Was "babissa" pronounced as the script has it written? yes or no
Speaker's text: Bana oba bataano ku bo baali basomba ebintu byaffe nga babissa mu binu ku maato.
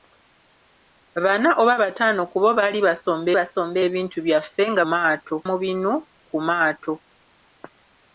no